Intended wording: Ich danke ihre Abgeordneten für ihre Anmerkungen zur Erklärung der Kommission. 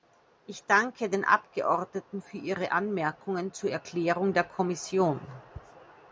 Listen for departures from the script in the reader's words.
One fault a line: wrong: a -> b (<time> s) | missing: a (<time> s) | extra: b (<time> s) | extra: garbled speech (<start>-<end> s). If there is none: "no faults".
wrong: ihre -> den (1.1 s)